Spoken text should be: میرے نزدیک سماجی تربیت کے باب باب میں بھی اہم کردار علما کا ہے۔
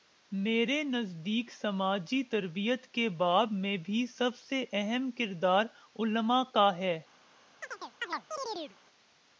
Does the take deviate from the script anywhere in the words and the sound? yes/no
yes